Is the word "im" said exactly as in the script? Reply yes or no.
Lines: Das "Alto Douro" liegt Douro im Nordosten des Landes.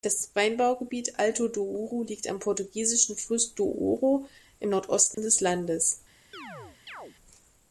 yes